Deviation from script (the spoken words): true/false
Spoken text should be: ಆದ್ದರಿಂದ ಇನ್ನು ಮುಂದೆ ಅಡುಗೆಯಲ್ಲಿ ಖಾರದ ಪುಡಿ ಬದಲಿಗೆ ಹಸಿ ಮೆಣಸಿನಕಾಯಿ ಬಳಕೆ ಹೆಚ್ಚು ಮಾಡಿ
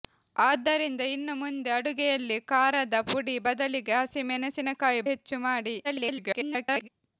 true